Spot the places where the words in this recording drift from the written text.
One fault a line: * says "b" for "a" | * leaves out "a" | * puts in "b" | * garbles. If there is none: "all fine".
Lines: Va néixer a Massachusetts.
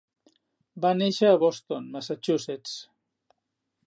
* puts in "Boston"